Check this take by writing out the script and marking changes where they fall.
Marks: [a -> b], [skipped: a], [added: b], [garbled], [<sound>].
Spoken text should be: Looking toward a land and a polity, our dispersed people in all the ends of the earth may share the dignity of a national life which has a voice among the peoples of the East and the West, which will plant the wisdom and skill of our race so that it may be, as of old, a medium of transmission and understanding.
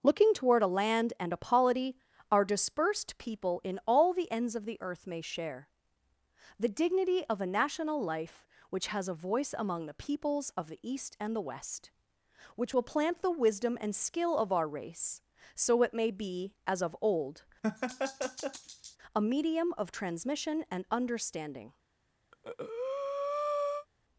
Looking toward a land and a polity, our dispersed people in all the ends of the earth may share the dignity of a national life which has a voice among the peoples of the East and the West, which will plant the wisdom and skill of our race so [skipped: that] it may be, as of old, [laugh] a medium of transmission and understanding. [breath]